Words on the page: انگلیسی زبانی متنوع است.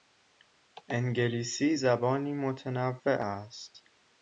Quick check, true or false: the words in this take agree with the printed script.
true